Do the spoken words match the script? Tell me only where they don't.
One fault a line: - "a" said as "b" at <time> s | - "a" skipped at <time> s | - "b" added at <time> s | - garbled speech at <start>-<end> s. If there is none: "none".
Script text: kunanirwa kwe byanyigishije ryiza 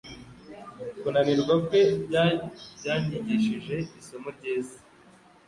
- "isomo" added at 4.0 s